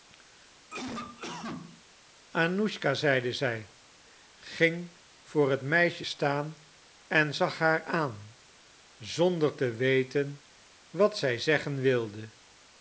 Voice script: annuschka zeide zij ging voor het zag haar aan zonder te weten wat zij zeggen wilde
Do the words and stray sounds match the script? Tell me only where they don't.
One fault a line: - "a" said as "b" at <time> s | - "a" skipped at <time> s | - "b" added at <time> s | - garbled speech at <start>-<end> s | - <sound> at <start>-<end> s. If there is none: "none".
- cough at 0.7-1.8 s
- "meisje staan en" added at 5.6 s